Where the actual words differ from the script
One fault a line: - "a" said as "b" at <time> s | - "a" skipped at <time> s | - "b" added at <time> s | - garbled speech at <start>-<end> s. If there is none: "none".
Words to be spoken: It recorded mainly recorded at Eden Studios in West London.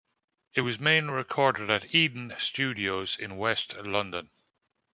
- "recorded" said as "was" at 0.6 s